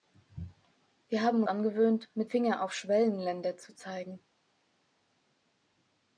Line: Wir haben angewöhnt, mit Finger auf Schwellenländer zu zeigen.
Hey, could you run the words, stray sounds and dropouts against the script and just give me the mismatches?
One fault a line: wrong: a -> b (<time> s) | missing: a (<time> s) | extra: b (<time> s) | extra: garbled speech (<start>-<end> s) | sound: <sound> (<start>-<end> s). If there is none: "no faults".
no faults